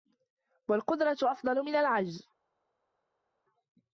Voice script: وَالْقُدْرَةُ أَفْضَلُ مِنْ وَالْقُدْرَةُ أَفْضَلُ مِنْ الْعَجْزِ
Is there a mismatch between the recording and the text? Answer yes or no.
yes